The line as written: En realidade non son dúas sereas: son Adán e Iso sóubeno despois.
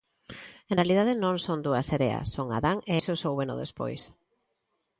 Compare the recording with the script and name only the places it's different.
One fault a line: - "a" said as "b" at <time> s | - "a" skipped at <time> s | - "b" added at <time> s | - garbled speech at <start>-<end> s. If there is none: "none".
none